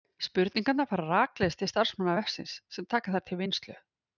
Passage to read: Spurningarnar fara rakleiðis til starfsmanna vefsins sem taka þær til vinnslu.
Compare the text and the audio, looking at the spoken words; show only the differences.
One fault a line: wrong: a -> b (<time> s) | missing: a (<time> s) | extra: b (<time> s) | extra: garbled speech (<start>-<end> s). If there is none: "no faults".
no faults